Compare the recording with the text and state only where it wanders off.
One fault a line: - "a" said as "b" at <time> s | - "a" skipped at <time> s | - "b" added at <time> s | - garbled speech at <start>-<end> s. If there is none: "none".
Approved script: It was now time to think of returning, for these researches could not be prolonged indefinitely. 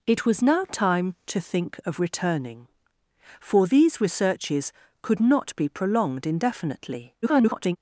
- garbled speech at 7.2-7.8 s